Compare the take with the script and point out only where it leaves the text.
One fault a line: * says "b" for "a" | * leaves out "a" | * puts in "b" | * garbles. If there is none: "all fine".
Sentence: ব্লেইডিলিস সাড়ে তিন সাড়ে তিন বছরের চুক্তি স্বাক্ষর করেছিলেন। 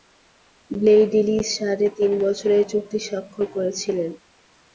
* leaves out "সাড়ে তিন"